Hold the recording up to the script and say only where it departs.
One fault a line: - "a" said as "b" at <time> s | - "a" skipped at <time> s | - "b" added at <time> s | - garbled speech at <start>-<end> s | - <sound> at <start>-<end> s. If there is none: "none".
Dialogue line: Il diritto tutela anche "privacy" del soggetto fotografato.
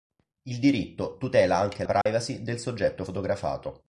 - dropout at 2.0-2.1 s